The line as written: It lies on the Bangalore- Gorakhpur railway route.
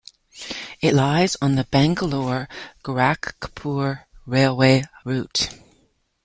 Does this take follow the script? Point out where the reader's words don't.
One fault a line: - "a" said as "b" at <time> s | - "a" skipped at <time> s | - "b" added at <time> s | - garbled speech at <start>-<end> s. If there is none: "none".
none